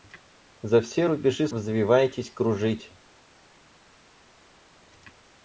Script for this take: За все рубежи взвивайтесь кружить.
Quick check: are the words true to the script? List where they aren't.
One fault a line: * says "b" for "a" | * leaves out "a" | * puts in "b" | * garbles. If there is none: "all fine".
all fine